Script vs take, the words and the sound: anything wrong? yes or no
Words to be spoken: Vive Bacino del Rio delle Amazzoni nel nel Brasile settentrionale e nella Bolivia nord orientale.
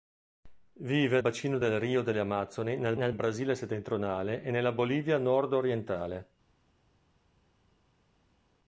no